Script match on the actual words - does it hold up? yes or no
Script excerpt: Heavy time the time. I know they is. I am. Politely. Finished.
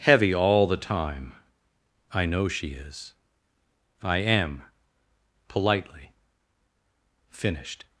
no